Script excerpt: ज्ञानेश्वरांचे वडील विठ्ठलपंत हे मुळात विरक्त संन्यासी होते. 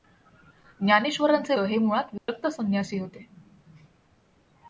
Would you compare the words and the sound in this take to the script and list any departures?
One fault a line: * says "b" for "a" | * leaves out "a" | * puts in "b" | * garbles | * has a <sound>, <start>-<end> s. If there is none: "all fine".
* leaves out "वडील विठ्ठलपंत"
* has a dropout, 2.2-2.3 s